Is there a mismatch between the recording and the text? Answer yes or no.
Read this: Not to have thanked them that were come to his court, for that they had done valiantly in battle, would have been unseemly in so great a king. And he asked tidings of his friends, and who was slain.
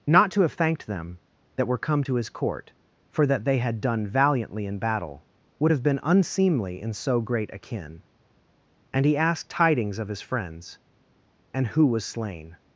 yes